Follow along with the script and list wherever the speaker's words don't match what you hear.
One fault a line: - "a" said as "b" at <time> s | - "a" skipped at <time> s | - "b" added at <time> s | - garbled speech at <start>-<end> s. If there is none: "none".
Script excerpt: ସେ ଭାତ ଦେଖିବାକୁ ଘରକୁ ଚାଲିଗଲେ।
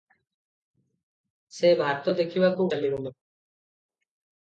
- "ଘରକୁ" skipped at 2.7 s